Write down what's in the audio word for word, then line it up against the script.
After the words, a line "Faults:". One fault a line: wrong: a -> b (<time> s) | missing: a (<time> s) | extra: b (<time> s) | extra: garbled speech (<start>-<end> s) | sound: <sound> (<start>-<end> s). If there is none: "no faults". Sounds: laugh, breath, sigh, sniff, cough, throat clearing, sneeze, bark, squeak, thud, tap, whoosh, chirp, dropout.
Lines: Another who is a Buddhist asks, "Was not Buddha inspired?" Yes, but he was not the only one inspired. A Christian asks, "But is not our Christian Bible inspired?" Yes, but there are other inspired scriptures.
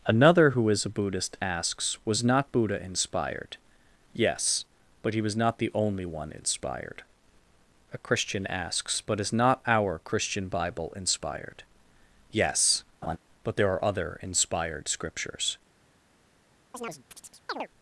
Another who is a Buddhist asks, "Was not Buddha inspired?" Yes, but he was not the only one inspired. A Christian asks, "But is not our Christian Bible inspired?" Yes, but there are other inspired scriptures.
Faults:
sound: laugh (13.0-13.2 s)
sound: chirp (16.7-17.7 s)